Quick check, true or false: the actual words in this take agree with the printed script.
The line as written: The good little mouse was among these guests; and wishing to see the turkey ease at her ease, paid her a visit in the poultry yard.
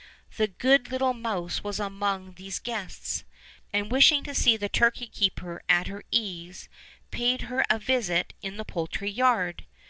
false